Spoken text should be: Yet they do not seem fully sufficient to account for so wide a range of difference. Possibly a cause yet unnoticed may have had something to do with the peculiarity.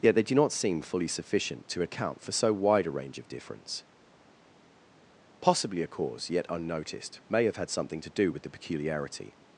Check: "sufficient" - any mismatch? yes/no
no